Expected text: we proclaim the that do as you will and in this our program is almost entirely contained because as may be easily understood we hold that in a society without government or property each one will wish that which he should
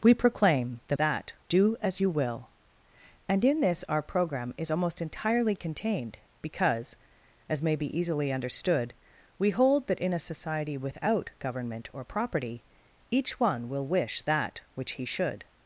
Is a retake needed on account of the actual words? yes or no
no